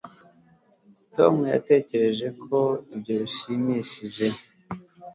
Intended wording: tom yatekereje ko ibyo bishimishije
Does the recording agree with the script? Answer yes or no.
yes